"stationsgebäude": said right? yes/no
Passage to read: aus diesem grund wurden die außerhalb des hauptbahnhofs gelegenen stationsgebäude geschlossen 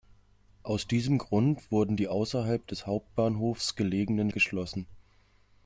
no